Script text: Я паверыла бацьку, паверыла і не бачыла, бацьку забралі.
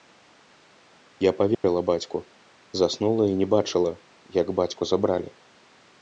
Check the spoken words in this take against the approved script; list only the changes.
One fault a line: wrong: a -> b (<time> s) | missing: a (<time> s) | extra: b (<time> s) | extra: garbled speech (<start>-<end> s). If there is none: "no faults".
wrong: паверыла -> заснула (2.8 s)
extra: як (4.4 s)